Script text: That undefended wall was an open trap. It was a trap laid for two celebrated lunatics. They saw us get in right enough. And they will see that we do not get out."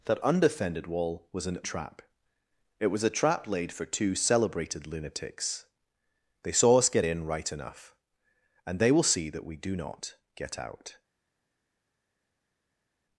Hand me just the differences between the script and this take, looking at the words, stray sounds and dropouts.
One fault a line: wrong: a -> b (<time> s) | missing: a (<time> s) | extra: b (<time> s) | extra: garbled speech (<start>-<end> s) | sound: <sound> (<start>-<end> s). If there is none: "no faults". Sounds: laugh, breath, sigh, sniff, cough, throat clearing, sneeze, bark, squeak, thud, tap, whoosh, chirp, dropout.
missing: open (1.6 s)